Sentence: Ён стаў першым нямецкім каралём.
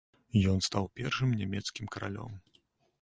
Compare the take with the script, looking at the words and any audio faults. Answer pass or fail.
pass